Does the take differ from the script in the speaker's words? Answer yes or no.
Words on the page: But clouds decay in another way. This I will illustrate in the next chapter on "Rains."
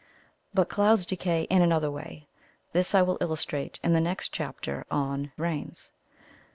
no